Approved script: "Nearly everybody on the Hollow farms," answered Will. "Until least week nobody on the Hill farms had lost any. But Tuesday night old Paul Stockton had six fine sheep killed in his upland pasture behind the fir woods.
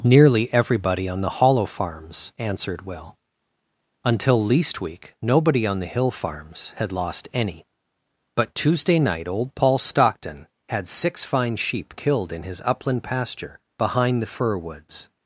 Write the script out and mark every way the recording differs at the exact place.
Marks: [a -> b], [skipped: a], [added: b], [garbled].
"Nearly everybody on the Hollow farms," answered Will. "Until least week nobody on the Hill farms had lost any. But Tuesday night old Paul Stockton had six fine sheep killed in his upland pasture behind the fir woods.